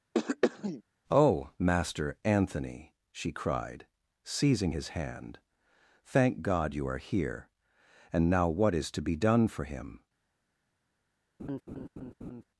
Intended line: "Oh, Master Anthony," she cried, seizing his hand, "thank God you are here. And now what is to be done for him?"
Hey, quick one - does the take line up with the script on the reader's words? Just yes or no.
yes